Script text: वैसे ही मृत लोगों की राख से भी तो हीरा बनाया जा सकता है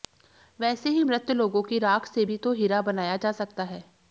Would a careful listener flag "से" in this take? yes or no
no